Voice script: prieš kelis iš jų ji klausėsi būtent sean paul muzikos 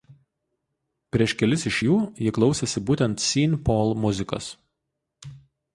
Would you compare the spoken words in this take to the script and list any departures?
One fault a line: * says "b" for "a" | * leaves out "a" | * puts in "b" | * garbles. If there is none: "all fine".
all fine